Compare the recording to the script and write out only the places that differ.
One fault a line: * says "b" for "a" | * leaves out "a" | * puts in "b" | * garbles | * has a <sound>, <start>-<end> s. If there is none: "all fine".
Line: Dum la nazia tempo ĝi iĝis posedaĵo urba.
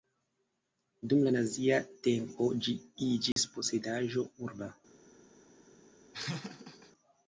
* has a dropout, 3.3-3.4 s
* has a laugh, 6.1-6.9 s